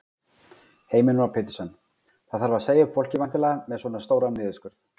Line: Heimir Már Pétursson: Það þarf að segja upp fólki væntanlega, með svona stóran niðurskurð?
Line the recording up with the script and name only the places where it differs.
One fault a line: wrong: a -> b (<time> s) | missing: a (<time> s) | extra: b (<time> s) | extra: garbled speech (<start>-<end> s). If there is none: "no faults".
no faults